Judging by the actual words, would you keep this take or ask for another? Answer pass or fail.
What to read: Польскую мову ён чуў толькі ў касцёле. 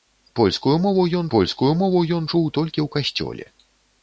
fail